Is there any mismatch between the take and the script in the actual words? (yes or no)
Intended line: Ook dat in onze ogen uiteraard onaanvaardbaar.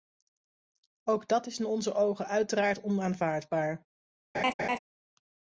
yes